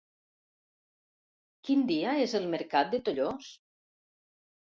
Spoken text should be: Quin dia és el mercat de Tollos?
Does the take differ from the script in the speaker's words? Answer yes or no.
no